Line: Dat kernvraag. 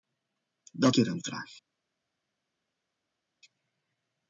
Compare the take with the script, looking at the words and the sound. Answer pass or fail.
pass